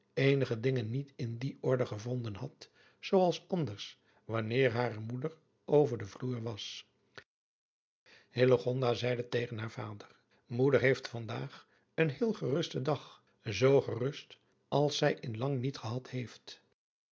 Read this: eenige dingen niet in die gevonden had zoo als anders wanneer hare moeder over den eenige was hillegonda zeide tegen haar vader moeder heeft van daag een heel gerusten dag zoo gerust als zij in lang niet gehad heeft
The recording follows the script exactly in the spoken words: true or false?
false